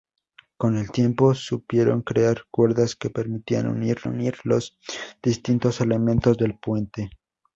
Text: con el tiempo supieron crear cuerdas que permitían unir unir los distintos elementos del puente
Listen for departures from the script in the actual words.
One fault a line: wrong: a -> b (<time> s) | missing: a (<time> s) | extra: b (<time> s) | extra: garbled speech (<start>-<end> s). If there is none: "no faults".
no faults